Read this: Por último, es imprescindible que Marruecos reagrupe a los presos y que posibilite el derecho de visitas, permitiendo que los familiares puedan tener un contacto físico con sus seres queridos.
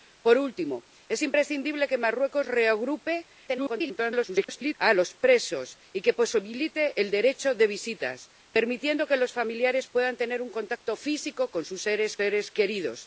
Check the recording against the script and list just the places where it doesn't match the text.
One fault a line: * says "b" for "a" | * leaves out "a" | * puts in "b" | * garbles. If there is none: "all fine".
* garbles
* puts in "seres"